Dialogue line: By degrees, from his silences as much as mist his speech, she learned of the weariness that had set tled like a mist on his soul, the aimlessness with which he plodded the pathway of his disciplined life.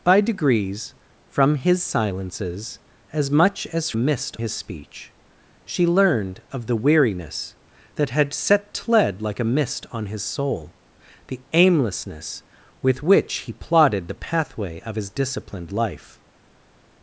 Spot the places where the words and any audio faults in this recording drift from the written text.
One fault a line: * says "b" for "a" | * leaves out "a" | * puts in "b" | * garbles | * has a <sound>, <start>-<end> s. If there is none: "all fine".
all fine